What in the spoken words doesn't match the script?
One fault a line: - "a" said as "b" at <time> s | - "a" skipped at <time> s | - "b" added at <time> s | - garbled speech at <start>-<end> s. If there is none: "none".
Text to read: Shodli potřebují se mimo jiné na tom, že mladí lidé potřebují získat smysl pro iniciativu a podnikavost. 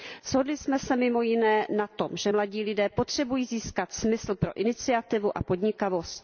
- "potřebují" said as "jsme" at 0.6 s